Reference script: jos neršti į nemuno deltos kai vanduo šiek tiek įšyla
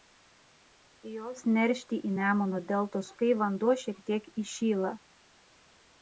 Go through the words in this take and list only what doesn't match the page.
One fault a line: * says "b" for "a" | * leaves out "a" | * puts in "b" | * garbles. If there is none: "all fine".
all fine